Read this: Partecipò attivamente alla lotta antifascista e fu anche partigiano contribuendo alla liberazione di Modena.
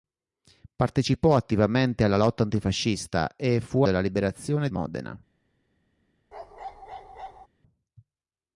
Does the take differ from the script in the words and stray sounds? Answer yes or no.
yes